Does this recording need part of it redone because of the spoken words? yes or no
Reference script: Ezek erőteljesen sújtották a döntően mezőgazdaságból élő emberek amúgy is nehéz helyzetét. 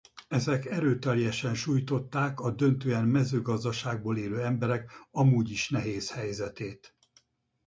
no